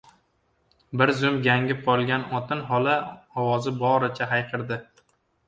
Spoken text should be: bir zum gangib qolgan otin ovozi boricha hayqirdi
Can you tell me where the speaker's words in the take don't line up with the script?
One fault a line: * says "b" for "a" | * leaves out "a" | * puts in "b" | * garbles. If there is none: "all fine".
* puts in "xola"